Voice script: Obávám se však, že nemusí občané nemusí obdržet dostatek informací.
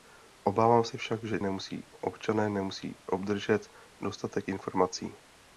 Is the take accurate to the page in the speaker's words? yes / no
yes